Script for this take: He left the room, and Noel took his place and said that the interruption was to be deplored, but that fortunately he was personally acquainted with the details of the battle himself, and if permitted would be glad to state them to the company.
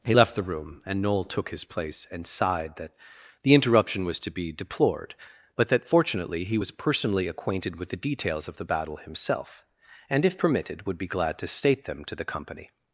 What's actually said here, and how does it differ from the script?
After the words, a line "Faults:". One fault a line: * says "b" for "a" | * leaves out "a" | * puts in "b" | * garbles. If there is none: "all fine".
He left the room, and Noel took his place and sighed that the interruption was to be deplored, but that fortunately he was personally acquainted with the details of the battle himself, and if permitted would be glad to state them to the company.
Faults:
* says "sighed" for "said"